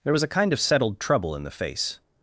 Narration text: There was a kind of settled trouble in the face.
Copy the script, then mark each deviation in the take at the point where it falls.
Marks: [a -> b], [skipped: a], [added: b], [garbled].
There was a kind of settled trouble in the face.